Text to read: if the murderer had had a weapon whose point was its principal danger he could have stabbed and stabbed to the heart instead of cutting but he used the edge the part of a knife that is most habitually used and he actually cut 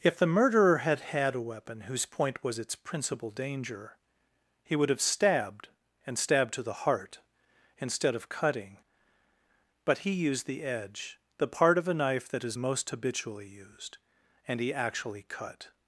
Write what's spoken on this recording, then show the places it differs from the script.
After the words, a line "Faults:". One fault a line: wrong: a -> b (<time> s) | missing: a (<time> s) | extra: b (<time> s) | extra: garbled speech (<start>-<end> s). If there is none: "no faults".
if the murderer had had a weapon whose point was its principal danger he would have stabbed and stabbed to the heart instead of cutting but he used the edge the part of a knife that is most habitually used and he actually cut
Faults:
wrong: could -> would (4.8 s)